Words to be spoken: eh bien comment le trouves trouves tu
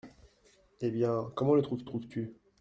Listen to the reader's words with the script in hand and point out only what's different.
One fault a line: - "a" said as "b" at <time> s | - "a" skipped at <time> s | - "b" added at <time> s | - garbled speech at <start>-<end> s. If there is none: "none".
none